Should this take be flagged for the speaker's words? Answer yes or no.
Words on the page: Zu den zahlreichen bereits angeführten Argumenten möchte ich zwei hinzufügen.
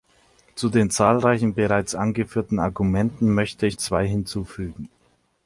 no